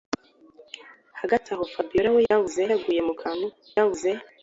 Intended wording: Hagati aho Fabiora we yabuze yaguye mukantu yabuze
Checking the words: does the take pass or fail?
pass